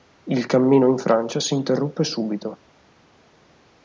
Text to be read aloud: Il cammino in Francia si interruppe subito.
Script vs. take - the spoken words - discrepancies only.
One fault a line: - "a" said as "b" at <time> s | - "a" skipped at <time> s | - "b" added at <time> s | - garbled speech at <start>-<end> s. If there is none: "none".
none